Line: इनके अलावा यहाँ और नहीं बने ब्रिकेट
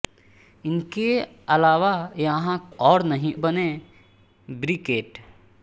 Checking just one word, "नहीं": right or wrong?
right